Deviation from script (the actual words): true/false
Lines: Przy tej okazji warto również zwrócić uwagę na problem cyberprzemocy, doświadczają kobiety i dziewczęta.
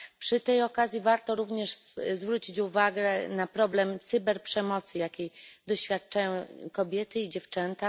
true